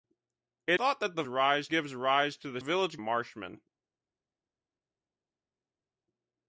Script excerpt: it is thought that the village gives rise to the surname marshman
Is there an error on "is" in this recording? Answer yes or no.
yes